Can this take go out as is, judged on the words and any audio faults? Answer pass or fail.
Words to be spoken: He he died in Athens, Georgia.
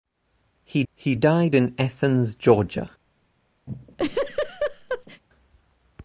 fail